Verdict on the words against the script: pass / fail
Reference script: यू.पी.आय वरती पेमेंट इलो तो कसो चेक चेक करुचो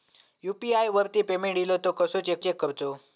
pass